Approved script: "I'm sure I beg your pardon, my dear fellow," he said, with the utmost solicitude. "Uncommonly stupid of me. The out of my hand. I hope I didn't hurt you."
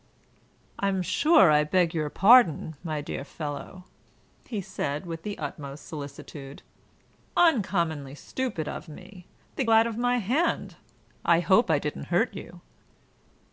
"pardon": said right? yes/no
yes